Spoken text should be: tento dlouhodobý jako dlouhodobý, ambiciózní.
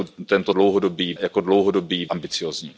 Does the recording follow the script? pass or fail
pass